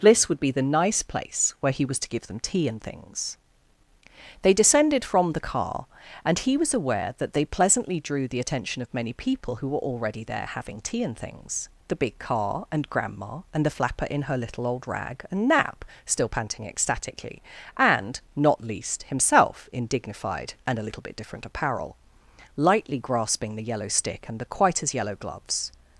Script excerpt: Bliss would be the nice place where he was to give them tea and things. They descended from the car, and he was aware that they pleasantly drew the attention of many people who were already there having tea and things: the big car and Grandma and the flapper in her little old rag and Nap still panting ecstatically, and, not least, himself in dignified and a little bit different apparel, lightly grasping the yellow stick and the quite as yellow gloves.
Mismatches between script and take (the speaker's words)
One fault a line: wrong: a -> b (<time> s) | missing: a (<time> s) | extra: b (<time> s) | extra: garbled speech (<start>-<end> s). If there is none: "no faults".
no faults